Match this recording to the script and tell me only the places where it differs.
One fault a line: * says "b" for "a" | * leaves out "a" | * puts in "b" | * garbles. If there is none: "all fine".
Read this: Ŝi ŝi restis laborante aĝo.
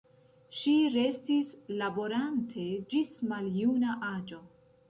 * leaves out "ŝi"
* puts in "ĝis maljuna"